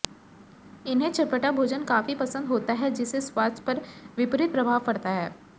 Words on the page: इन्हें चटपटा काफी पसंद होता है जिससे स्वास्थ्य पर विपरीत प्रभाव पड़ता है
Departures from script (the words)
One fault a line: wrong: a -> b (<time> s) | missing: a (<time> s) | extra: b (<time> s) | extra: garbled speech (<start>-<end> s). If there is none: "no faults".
extra: भोजन (1.5 s)